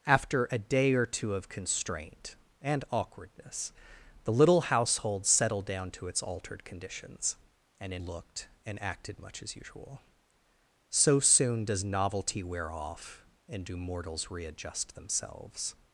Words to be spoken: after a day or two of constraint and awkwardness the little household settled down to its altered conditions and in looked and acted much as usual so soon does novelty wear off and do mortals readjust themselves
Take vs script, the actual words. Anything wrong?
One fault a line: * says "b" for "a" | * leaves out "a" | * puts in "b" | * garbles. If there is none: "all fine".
all fine